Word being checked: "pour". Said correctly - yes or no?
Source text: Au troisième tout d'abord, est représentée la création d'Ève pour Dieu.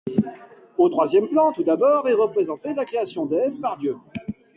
no